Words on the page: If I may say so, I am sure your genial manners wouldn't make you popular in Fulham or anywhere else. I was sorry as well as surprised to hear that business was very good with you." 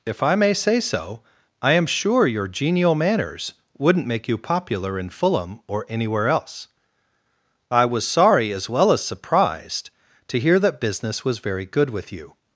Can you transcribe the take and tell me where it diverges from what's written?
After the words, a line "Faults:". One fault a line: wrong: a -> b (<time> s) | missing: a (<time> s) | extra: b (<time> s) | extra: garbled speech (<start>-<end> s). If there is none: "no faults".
If I may say so, I am sure your genial manners wouldn't make you popular in Fulham or anywhere else. I was sorry as well as surprised to hear that business was very good with you."
Faults:
no faults